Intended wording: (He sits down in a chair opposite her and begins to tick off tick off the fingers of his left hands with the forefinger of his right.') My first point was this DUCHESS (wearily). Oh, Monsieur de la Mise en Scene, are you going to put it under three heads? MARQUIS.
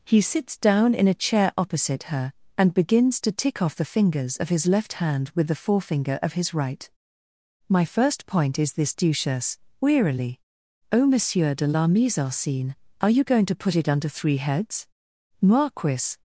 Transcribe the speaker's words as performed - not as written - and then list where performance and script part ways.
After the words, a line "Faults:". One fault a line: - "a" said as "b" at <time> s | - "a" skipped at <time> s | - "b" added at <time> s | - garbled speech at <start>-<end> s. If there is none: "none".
(He sits down in a chair opposite her and begins to tick off the fingers of his left hand with the forefinger of his right.') My first point is this DUCHESS (wearily). Oh, Monsieur de la Mise en Scene, are you going to put it under three heads? MARQUIS.
Faults:
- "tick off" skipped at 3.8 s
- "hands" said as "hand" at 4.9 s
- "was" said as "is" at 8.6 s